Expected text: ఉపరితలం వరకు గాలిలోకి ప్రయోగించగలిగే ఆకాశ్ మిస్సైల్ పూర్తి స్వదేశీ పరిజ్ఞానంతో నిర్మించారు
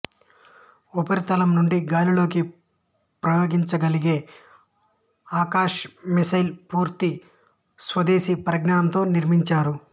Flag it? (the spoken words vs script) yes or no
yes